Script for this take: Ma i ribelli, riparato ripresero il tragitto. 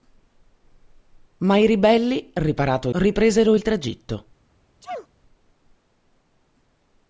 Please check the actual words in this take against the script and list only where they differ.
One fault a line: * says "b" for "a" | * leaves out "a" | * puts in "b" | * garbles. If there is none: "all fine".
all fine